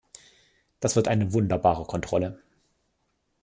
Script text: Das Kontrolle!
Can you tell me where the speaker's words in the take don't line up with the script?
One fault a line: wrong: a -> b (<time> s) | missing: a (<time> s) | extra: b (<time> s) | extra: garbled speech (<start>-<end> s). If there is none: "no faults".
extra: wird eine wunderbare (0.9 s)